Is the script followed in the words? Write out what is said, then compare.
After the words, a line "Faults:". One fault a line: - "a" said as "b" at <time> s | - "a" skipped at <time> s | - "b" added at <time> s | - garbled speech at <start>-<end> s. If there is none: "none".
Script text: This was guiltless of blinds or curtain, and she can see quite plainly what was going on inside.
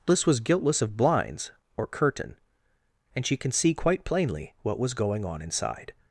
This was guiltless of blinds or curtain, and she can see quite plainly what was going on inside.
Faults:
none